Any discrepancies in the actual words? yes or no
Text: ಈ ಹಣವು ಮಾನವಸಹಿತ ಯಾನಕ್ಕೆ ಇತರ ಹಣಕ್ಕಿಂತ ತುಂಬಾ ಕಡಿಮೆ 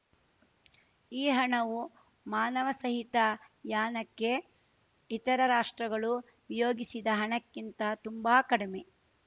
yes